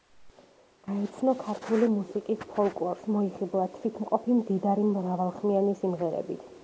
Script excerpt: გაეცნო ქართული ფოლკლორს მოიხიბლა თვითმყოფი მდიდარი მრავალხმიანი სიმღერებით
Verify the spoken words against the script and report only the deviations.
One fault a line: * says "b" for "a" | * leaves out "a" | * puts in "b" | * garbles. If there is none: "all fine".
* puts in "მუსიკის"